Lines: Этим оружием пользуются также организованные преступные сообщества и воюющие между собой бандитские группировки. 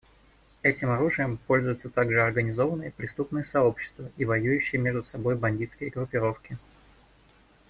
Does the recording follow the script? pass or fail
pass